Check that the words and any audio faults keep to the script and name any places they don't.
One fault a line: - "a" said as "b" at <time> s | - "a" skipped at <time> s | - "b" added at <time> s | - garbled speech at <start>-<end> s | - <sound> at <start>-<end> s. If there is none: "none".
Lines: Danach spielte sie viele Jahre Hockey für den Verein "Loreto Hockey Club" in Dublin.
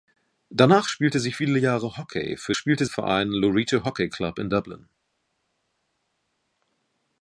- "den" said as "spielte" at 2.5 s